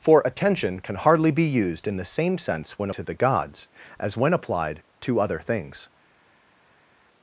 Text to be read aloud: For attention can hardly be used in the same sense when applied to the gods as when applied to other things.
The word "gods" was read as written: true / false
true